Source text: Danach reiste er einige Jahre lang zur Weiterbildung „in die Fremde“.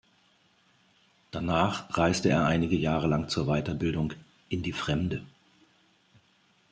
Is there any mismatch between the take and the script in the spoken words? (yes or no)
no